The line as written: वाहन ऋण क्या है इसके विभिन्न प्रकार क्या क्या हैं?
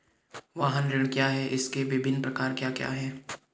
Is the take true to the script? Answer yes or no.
yes